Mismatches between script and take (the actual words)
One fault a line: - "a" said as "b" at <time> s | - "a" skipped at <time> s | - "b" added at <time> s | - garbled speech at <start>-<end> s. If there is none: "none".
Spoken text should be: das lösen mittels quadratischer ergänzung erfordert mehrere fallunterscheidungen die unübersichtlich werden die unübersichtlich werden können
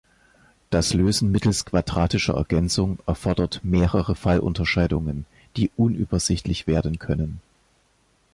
- "die unübersichtlich werden" skipped at 7.0 s